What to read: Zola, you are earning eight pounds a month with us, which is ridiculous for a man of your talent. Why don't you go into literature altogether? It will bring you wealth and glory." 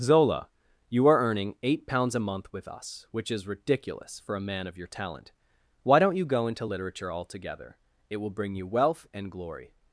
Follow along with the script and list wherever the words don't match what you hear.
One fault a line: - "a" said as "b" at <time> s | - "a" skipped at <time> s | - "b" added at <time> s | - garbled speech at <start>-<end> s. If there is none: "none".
none